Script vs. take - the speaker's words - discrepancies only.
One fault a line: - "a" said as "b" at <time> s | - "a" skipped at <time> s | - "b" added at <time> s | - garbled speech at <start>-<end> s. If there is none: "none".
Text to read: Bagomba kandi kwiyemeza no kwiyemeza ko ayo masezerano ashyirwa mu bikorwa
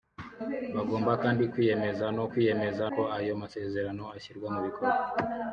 none